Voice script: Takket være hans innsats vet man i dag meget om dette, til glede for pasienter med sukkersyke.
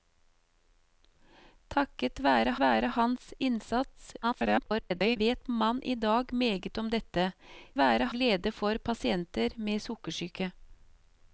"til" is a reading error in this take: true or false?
true